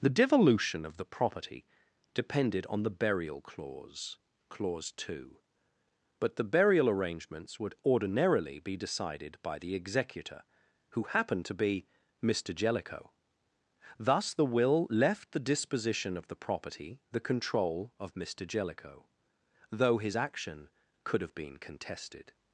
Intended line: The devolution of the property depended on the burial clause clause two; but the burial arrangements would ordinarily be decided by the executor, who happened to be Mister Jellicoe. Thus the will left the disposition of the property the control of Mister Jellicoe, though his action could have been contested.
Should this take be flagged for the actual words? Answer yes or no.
no